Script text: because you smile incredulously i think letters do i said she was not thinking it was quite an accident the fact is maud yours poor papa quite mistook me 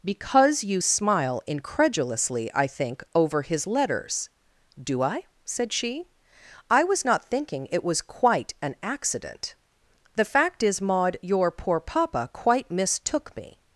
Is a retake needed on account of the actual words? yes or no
yes